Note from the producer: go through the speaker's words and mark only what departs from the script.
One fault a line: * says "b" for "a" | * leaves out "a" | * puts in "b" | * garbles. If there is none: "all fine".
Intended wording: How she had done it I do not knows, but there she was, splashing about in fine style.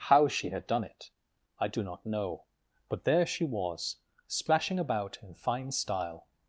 * says "know" for "knows"